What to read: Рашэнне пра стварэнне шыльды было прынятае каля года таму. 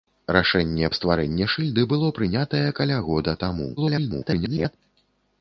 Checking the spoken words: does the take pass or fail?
fail